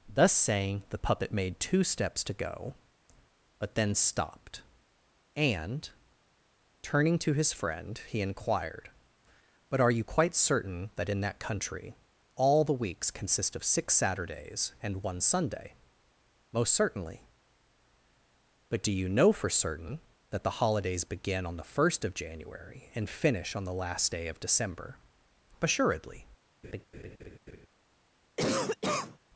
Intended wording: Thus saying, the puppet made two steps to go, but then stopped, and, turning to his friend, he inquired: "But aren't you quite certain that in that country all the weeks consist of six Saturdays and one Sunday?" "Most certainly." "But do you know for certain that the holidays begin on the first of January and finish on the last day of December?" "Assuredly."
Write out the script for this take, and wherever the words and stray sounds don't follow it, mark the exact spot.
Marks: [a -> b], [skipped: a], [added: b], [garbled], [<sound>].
Thus saying, the puppet made two steps to go, but then stopped, and, turning to his friend, he inquired: "But [aren't -> are] you quite certain that in that country all the weeks consist of six Saturdays and one Sunday?" "Most certainly." "But do you know for certain that the holidays begin on the first of January and finish on the last day of December?" "Assuredly." [laugh] [cough]